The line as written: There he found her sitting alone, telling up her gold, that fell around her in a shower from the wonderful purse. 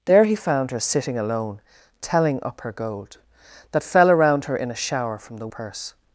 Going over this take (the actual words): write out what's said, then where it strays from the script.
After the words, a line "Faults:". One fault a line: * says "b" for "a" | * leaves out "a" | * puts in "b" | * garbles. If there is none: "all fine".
There he found her sitting alone, telling up her gold, that fell around her in a shower from the purse.
Faults:
* leaves out "wonderful"